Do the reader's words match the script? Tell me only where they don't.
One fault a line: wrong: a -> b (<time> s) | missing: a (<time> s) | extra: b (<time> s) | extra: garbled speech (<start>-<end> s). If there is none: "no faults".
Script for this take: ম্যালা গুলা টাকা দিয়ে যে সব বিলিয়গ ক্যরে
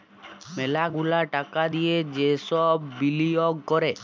no faults